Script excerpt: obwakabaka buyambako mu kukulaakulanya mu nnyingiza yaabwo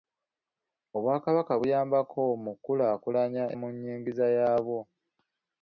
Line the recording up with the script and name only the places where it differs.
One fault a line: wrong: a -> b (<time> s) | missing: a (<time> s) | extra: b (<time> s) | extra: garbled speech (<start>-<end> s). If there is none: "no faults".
no faults